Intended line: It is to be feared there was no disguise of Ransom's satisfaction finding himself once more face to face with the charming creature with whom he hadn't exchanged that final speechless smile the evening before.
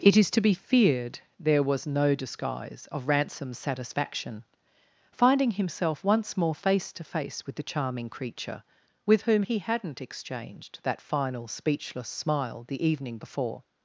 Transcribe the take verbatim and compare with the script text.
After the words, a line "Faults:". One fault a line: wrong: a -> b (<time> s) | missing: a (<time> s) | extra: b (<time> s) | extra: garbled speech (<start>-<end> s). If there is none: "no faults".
It is to be feared there was no disguise of Ransom's satisfaction finding himself once more face to face with the charming creature with whom he hadn't exchanged that final speechless smile the evening before.
Faults:
no faults